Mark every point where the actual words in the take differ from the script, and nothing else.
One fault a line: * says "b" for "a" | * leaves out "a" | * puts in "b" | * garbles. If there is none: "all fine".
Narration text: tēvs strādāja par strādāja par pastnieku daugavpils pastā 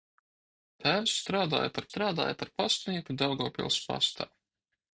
all fine